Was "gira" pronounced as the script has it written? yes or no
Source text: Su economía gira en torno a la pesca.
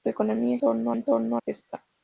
no